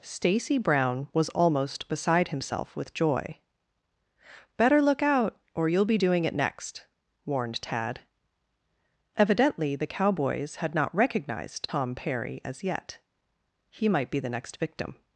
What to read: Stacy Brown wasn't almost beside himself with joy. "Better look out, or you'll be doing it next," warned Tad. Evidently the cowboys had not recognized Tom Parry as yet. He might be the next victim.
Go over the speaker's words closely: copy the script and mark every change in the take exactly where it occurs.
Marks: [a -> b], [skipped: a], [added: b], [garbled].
Stacy Brown [wasn't -> was] almost beside himself with joy. "Better look out, or you'll be doing it next," warned Tad. Evidently the cowboys had not recognized Tom Parry as yet. He might be the next victim.